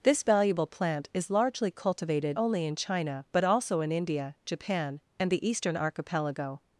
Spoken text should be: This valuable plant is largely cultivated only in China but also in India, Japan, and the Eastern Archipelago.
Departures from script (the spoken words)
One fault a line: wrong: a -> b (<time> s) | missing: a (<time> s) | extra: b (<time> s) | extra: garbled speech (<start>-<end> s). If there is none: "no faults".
no faults